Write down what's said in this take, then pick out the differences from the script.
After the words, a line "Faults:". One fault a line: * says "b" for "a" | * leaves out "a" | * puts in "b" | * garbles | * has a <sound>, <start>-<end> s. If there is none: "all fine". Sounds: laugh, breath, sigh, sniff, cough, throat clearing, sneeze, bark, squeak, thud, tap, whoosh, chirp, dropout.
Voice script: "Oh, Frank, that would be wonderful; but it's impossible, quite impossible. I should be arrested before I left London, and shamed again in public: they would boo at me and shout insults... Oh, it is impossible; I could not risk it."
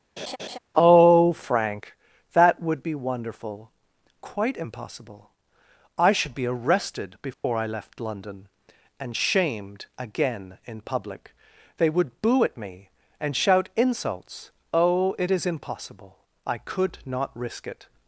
"Oh, Frank, that would be wonderful; quite impossible. I should be arrested before I left London, and shamed again in public: they would boo at me and shout insults... Oh, it is impossible; I could not risk it."
Faults:
* has a laugh, 0.2-0.6 s
* leaves out "but it's impossible"
* has a dropout, 7.3-7.4 s